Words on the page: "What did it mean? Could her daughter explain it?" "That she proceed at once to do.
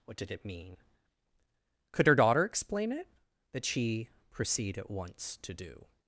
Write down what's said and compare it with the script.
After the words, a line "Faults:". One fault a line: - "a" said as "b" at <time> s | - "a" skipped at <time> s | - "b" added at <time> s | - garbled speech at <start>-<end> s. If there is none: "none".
"What did it mean? Could her daughter explain it?" "That she proceed at once to do.
Faults:
none